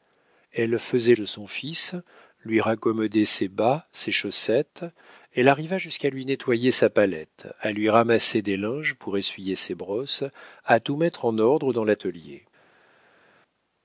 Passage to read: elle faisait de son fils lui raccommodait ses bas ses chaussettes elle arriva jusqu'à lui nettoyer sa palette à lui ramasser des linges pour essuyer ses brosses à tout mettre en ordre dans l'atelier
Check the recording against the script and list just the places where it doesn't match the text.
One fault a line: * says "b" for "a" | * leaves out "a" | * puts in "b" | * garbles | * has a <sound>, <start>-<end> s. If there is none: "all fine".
all fine